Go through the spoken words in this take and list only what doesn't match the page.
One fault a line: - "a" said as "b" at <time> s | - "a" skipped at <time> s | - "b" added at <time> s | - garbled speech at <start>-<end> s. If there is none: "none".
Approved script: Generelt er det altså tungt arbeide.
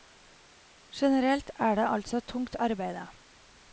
none